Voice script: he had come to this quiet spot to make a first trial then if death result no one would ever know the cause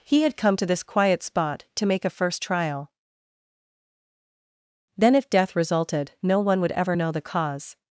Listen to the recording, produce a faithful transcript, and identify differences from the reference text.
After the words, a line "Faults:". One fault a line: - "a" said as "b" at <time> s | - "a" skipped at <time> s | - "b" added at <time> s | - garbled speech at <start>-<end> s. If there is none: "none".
he had come to this quiet spot to make a first trial then if death resulted no one would ever know the cause
Faults:
- "result" said as "resulted" at 5.6 s